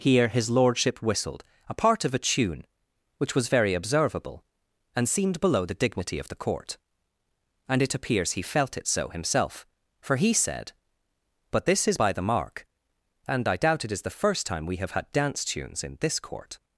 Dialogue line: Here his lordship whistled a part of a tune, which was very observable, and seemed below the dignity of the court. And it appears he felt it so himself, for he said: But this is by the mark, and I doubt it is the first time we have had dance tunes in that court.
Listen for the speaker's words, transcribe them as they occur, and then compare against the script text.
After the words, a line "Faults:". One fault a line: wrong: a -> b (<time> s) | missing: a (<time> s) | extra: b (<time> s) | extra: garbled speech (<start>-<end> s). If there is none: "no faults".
Here his lordship whistled a part of a tune, which was very observable, and seemed below the dignity of the court. And it appears he felt it so himself, for he said: But this is by the mark, and I doubt it is the first time we have had dance tunes in this court.
Faults:
wrong: that -> this (16.0 s)